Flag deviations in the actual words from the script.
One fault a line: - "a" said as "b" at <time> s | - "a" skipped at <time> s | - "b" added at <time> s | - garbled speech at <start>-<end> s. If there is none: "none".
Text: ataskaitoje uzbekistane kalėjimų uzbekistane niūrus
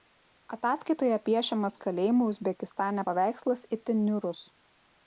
- "uzbekistane" said as "piešiamas" at 1.3 s
- "paveikslas itin" added at 3.1 s